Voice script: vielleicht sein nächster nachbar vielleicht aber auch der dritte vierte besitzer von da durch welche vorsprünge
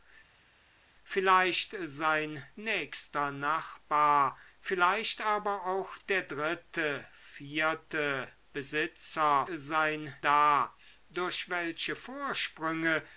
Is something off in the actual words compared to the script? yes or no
yes